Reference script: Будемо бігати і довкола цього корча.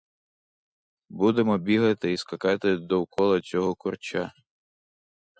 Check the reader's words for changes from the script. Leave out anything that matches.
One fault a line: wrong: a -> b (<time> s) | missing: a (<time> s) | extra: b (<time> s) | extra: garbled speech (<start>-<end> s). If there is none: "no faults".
extra: скакати (2.2 s)